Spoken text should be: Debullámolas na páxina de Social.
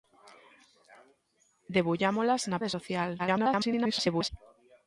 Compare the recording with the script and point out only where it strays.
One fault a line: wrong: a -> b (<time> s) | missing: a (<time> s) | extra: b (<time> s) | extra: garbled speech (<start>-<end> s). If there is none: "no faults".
missing: páxina (2.6 s)
extra: garbled speech (3.2-4.3 s)